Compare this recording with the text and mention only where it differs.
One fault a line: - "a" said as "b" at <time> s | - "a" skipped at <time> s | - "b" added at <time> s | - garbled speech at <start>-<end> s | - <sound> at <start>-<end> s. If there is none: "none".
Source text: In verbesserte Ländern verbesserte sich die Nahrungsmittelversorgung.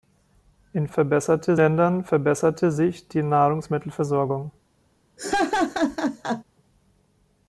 - laugh at 5.2-6.4 s